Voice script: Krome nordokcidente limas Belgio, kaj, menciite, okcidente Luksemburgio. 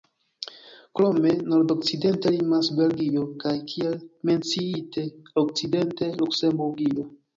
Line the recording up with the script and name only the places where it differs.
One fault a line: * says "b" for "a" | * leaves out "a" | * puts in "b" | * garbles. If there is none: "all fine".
* puts in "kiel"